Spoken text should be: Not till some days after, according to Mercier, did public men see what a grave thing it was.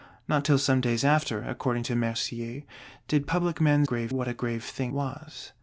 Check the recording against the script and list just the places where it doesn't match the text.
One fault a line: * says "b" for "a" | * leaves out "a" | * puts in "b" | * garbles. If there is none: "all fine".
* says "grave" for "see"
* leaves out "it"